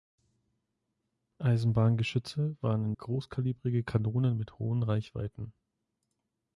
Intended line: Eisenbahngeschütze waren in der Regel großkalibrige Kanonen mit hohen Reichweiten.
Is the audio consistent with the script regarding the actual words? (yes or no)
no